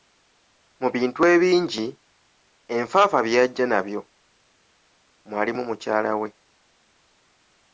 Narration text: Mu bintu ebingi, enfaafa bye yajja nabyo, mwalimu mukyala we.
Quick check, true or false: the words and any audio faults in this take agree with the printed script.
true